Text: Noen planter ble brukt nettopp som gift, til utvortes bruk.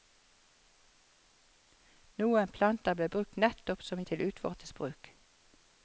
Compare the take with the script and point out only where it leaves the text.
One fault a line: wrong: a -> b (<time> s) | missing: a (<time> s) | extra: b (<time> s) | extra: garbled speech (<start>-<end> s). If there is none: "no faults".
missing: gift (4.0 s)